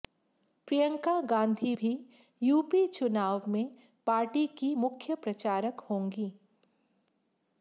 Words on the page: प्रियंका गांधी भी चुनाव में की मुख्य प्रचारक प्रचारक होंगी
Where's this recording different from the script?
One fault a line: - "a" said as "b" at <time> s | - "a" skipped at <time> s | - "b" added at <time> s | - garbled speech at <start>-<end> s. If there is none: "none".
- "यूपी" added at 2.4 s
- "पार्टी" added at 4.1 s
- "प्रचारक" skipped at 5.8 s